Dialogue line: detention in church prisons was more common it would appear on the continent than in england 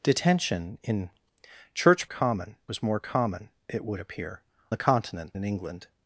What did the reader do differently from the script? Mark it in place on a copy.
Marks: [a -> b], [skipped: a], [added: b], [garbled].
detention in church [prisons -> common] was more common it would appear [skipped: on] the continent [skipped: than] in england